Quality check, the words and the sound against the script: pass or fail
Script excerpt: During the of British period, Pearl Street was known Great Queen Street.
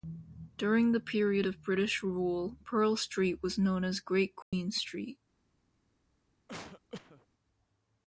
fail